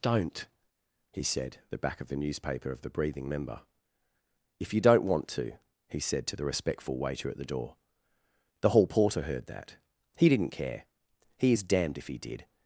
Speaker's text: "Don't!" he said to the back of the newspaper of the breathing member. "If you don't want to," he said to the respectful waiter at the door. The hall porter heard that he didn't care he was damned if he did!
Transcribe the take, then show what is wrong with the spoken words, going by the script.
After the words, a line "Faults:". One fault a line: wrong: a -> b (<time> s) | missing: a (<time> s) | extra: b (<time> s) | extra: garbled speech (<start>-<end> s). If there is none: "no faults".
"Don't!" he said the back of the newspaper of the breathing member. "If you don't want to," he said to the respectful waiter at the door. The hall porter heard that he didn't care he is damned if he did!
Faults:
missing: to (1.6 s)
wrong: was -> is (11.5 s)